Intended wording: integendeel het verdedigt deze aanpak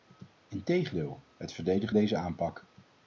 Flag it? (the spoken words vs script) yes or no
no